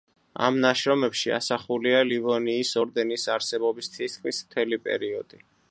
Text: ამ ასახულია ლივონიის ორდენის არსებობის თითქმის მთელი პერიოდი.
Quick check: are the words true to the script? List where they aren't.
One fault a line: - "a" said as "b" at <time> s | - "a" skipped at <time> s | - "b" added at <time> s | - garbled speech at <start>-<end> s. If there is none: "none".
- "ნაშრომებში" added at 0.6 s